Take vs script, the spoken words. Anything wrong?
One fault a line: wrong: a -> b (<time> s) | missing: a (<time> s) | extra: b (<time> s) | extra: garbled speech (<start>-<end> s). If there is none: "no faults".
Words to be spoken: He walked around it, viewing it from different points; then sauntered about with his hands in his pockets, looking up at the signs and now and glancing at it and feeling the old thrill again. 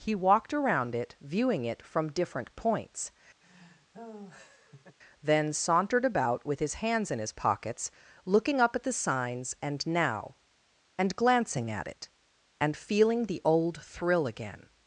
no faults